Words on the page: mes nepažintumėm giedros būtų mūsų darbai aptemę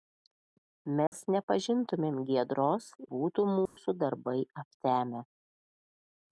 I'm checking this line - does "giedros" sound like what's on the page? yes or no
yes